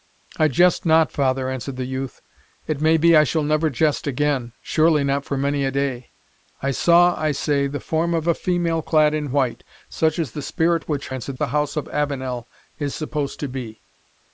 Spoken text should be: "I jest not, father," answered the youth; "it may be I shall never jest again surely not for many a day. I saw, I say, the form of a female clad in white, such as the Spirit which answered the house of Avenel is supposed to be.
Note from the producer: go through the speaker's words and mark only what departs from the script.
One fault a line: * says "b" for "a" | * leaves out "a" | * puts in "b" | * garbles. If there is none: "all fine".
all fine